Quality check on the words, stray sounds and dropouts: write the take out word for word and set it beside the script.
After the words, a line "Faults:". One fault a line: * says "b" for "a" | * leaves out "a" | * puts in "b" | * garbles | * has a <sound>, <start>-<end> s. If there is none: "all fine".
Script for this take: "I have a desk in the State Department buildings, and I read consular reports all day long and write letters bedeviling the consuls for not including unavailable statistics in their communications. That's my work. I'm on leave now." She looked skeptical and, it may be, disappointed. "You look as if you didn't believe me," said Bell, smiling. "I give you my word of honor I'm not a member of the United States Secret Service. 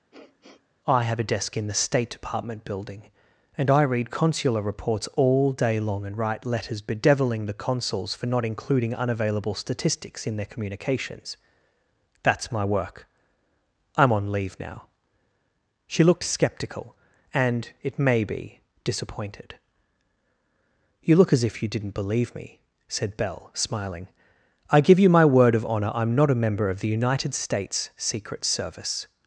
"I have a desk in the State Department building, and I read consular reports all day long and write letters bedeviling the consuls for not including unavailable statistics in their communications. That's my work. I'm on leave now." She looked skeptical and, it may be, disappointed. "You look as if you didn't believe me," said Bell, smiling. "I give you my word of honor I'm not a member of the United States Secret Service.
Faults:
* has a sniff, 0.1-0.7 s
* says "building" for "buildings"